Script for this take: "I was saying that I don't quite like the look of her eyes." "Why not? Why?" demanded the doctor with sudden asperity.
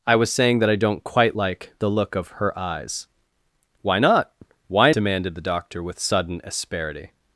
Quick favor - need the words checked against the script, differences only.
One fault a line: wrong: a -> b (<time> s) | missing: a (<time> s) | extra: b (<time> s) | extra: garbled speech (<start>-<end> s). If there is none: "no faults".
no faults